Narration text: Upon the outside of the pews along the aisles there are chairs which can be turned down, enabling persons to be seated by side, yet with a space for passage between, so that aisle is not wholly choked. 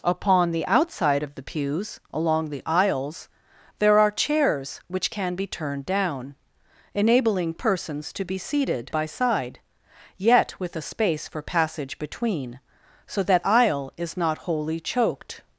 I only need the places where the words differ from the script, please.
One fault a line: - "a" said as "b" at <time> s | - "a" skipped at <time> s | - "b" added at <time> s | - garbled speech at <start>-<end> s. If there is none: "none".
none